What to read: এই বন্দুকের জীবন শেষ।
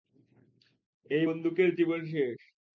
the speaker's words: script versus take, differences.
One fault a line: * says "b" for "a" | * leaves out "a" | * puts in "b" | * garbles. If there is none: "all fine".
all fine